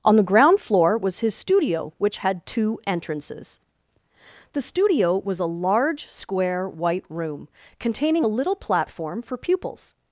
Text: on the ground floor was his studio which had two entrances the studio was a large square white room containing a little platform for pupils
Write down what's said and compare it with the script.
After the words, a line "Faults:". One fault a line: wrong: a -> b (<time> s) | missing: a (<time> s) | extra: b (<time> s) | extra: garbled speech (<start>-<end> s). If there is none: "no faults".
on the ground floor was his studio which had two entrances the studio was a large square white room containing a little platform for pupils
Faults:
no faults